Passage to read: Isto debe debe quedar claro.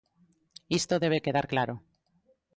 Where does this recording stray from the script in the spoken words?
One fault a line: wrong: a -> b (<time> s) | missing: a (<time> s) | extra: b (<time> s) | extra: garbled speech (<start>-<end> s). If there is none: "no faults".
missing: debe (1.2 s)